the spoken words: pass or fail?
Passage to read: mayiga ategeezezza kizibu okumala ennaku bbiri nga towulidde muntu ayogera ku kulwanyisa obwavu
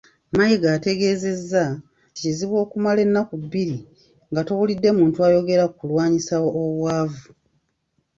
pass